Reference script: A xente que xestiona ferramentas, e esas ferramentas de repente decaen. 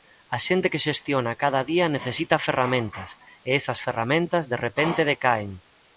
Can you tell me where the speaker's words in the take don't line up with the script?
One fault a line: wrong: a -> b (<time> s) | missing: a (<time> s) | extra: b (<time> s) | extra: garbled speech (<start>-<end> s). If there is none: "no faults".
extra: cada día necesita (1.4 s)